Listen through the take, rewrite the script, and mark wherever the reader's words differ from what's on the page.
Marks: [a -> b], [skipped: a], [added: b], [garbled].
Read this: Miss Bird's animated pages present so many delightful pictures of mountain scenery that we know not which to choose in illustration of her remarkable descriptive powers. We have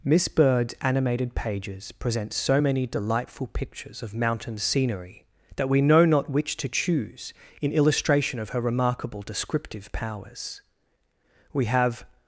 Miss Bird's animated pages present so many delightful pictures of mountain scenery that we know not which to choose in illustration of her remarkable descriptive powers. We have